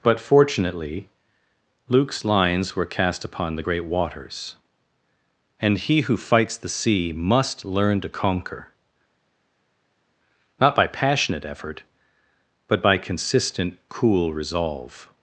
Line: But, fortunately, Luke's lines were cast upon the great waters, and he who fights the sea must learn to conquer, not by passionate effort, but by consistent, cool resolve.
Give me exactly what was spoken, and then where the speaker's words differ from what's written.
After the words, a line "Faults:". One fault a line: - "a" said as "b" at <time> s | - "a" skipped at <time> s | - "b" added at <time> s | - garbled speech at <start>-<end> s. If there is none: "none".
But, fortunately, Luke's lines were cast upon the great waters, and he who fights the sea must learn to conquer, not by passionate effort, but by consistent, cool resolve.
Faults:
none